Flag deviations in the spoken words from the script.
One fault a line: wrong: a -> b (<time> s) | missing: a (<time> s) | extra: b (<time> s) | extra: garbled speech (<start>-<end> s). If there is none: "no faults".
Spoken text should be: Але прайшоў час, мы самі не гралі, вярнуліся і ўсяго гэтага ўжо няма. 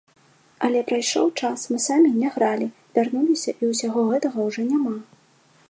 no faults